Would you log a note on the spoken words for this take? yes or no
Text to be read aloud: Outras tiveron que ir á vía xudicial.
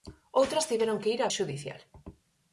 yes